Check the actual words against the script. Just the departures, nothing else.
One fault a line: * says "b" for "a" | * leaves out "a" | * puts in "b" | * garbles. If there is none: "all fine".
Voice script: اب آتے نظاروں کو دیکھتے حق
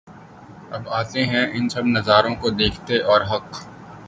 * puts in "ہیں ان سب"
* puts in "اور"